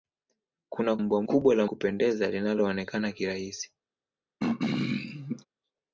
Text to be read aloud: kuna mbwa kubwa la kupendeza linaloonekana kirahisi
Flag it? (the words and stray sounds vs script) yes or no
yes